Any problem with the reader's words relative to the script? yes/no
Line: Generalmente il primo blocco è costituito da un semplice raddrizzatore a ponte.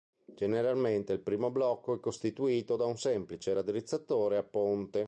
no